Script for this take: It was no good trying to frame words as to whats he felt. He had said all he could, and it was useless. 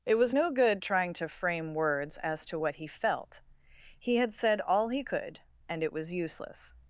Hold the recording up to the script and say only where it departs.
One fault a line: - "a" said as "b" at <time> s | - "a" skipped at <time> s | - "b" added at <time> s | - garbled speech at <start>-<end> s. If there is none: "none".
- "whats" said as "what" at 2.6 s